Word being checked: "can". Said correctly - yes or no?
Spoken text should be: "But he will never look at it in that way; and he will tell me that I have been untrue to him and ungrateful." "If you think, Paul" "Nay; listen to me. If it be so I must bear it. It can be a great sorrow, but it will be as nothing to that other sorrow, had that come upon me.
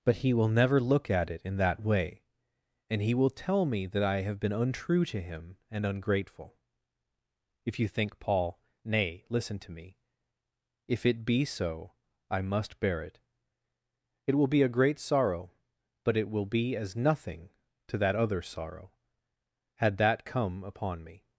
no